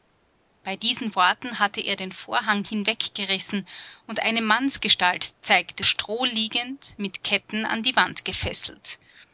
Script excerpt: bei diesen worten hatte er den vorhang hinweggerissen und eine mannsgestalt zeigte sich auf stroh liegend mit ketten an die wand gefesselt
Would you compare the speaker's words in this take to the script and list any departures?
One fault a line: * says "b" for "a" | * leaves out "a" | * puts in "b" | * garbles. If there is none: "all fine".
* leaves out "sich auf"